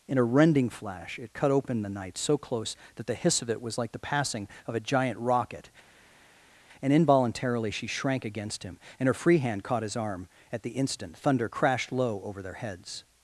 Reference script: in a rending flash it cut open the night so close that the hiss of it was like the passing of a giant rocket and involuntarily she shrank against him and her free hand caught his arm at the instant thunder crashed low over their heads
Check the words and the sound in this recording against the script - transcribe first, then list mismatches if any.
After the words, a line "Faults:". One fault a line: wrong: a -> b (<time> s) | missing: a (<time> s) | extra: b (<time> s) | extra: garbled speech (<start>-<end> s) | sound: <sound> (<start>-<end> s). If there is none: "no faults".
in a rending flash it cut open the night so close that the hiss of it was like the passing of a giant rocket and involuntarily she shrank against him and her free hand caught his arm at the instant thunder crashed low over their heads
Faults:
no faults